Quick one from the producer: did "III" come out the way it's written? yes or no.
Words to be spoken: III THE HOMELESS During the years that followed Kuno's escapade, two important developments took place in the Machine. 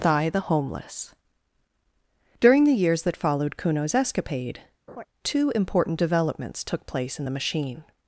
no